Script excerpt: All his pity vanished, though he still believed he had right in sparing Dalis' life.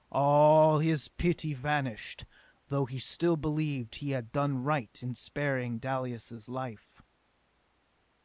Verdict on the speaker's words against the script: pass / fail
fail